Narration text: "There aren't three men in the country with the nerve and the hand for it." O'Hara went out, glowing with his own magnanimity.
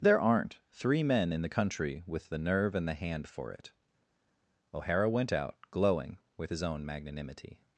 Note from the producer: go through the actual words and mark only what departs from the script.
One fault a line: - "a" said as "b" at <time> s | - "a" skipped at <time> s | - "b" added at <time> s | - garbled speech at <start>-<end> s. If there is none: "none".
none